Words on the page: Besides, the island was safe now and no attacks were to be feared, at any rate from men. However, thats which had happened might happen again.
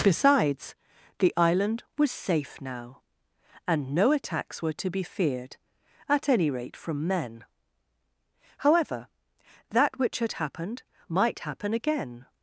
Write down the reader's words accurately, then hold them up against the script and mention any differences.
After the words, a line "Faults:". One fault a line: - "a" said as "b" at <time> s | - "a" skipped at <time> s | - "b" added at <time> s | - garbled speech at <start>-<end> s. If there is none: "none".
Besides, the island was safe now and no attacks were to be feared, at any rate from men. However, that which had happened might happen again.
Faults:
- "thats" said as "that" at 9.7 s